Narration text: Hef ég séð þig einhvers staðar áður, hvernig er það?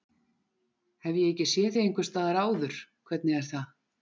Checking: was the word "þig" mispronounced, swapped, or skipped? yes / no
no